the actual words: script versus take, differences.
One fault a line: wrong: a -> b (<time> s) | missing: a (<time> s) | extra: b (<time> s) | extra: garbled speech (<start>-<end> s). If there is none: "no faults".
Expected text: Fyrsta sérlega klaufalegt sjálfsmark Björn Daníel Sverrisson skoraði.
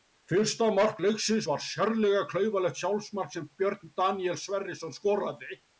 extra: mark leiksins var (0.7 s)
extra: sem (3.3 s)